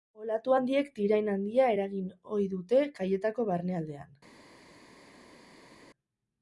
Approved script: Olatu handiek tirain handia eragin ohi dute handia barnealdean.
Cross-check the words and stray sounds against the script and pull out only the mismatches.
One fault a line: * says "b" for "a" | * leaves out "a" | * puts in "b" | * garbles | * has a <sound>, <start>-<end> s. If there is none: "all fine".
* says "kaietako" for "handia"